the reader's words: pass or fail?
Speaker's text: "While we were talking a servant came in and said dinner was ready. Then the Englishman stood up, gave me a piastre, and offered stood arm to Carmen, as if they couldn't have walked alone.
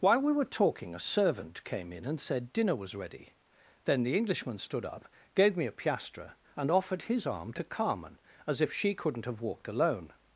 fail